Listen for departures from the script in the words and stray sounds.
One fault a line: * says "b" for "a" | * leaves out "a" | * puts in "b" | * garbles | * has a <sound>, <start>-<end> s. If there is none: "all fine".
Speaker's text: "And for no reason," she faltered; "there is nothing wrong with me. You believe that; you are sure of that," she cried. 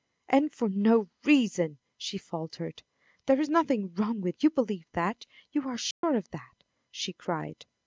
* leaves out "me"
* has a dropout, 5.9-6.0 s